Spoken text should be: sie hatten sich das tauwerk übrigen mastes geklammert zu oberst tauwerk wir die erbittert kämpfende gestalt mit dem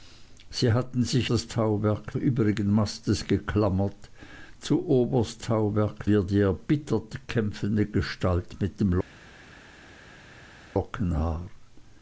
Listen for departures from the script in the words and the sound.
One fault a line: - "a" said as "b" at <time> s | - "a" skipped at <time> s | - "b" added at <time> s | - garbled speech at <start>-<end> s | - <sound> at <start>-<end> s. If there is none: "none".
none